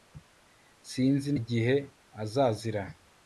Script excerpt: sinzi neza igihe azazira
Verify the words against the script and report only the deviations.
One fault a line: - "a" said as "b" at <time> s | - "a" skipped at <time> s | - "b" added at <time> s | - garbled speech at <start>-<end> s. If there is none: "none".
- "neza" skipped at 1.3 s